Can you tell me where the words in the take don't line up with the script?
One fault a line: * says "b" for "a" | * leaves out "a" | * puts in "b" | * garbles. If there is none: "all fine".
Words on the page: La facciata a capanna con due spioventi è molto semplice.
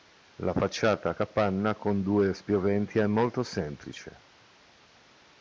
all fine